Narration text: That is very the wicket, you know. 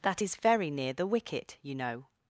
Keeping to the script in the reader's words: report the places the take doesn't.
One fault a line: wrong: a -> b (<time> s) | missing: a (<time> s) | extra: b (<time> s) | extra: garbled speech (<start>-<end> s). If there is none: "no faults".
extra: near (0.7 s)